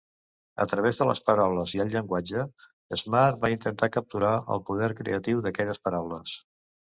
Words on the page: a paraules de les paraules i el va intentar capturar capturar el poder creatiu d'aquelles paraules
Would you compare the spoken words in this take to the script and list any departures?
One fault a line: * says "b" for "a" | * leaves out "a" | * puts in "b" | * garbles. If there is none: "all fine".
* says "través" for "paraules"
* puts in "llenguatge smart"
* leaves out "capturar"